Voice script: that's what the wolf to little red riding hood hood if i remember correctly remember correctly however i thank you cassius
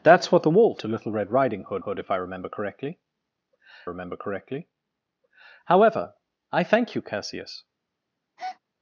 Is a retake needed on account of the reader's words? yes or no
no